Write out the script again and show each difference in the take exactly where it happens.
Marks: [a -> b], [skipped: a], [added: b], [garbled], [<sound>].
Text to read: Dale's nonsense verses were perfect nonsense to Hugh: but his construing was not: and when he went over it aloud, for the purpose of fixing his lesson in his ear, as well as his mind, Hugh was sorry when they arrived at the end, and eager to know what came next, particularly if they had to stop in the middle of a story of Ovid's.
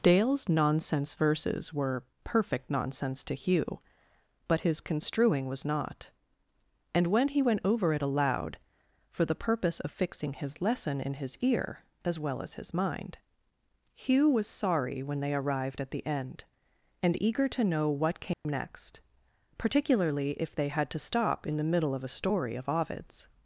Dale's nonsense verses were perfect nonsense to Hugh: but his construing was not: and when he went over it aloud, for the purpose of fixing his lesson in his ear, as well as his mind, Hugh was sorry when they arrived at the end, and eager to know what came [dropout] next, particularly if they had to stop in the middle of a story of Ovid's.